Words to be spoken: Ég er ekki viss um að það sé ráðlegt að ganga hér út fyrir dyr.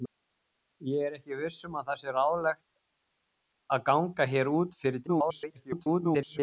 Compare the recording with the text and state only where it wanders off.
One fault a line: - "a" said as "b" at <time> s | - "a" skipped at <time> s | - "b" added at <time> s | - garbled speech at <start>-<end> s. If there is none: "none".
- garbled speech at 5.1-6.4 s